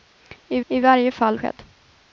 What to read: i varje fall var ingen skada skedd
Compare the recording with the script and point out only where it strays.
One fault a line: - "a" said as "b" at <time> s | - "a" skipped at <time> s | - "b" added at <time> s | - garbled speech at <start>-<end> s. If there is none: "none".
- "i" added at 0.7 s
- "var ingen skada" skipped at 1.4 s